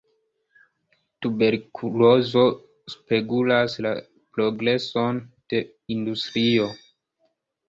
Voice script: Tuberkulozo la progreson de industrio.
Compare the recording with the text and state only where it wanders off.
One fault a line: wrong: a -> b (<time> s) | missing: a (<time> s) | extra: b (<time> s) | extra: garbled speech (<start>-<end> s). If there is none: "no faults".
extra: spegulas (2.9 s)